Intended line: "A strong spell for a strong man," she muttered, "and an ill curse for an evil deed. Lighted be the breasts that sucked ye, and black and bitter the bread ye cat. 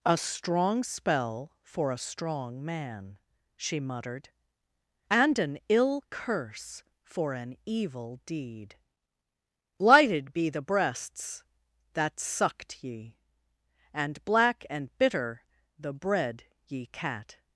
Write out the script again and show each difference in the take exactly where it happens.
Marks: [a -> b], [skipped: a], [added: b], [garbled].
"A strong spell for a strong man," she muttered, "and an ill curse for an evil deed. Lighted be the breasts that sucked ye, and black and bitter the bread ye cat.